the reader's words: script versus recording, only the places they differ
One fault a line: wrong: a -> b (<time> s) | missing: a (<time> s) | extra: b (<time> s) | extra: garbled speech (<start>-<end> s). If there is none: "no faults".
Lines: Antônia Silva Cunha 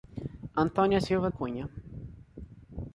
no faults